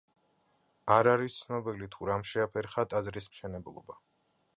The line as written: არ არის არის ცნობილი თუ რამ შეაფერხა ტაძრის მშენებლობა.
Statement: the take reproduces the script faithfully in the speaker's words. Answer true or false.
false